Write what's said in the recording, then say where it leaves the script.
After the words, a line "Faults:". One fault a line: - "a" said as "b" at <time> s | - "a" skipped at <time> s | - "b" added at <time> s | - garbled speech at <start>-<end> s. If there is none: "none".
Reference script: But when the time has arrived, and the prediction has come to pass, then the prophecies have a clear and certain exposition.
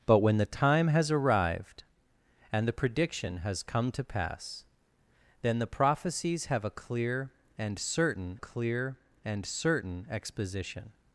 But when the time has arrived, and the prediction has come to pass, then the prophecies have a clear and certain clear and certain exposition.
Faults:
- "clear and certain" added at 8.4 s